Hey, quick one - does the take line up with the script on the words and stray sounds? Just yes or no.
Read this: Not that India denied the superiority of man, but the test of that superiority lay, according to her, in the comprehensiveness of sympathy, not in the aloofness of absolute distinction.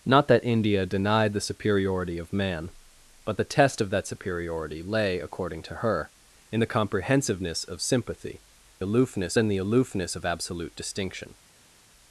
no